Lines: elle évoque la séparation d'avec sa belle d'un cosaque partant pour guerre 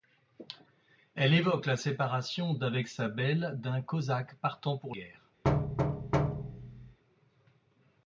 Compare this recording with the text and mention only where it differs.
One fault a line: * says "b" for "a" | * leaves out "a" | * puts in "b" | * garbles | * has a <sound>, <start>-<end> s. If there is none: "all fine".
* has a thud, 5.4-7.0 s